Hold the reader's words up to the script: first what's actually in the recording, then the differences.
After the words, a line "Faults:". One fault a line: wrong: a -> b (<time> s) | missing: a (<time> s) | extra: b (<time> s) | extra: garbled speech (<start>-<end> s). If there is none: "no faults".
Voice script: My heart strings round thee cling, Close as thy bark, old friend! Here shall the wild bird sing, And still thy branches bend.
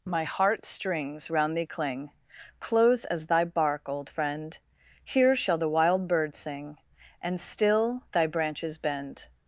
My heart strings round thee cling, Close as thy bark, old friend! Here shall the wild bird sing, And still thy branches bend.
Faults:
no faults